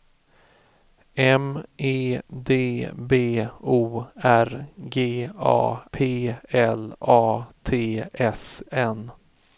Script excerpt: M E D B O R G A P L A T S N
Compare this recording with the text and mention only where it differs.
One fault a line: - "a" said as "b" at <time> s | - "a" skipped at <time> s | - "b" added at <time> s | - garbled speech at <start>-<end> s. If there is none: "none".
none